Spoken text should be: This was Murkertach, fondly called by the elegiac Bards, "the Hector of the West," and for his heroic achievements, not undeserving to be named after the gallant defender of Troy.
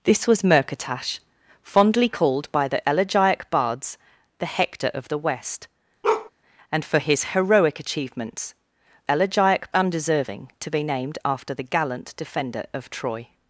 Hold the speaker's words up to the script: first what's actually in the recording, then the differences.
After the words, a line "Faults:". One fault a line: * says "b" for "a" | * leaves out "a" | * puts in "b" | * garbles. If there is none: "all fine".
This was Murkertach, fondly called by the elegiac Bards, "the Hector of the West," and for his heroic achievements, elegiac undeserving to be named after the gallant defender of Troy.
Faults:
* says "elegiac" for "not"